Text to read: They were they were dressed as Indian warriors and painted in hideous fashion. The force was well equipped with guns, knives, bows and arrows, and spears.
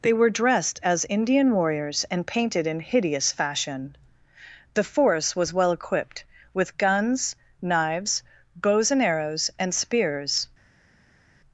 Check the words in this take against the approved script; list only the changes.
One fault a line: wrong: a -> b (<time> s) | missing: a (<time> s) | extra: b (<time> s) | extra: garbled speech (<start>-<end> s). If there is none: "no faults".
missing: they were (0.3 s)